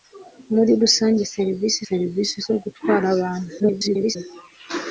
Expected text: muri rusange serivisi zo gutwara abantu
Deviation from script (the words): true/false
true